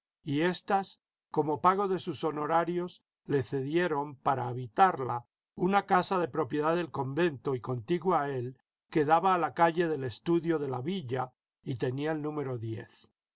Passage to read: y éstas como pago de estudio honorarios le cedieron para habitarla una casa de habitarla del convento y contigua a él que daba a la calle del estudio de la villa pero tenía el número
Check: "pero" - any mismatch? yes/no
yes